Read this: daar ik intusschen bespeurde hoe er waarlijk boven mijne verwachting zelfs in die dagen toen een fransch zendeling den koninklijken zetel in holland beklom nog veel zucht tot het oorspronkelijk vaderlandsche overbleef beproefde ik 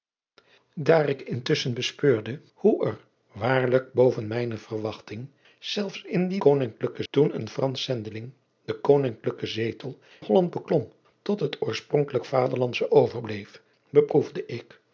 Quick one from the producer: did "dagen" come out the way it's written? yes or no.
no